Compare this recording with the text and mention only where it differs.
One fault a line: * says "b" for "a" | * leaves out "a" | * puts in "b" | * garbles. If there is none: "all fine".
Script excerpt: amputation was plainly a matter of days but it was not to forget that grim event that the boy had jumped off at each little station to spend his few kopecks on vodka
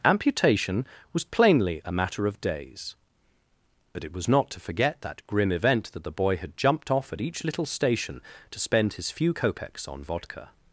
all fine